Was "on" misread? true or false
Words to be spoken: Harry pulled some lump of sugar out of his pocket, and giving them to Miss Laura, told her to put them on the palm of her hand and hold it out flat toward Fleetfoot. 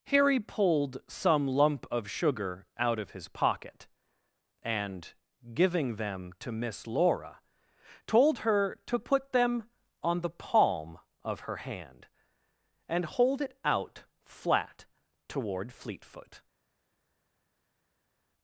false